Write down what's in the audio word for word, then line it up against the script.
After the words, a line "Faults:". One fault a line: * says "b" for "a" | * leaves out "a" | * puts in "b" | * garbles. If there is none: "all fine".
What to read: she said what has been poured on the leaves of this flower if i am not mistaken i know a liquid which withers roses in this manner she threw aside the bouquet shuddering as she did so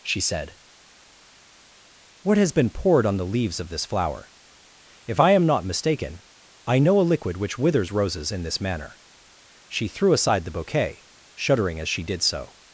she said what has been poured on the leaves of this flower if i am not mistaken i know a liquid which withers roses in this manner she threw aside the bouquet shuddering as she did so
Faults:
all fine